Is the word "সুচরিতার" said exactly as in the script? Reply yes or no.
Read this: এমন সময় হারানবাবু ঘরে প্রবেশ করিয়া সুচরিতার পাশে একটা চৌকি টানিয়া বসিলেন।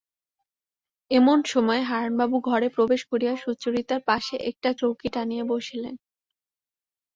yes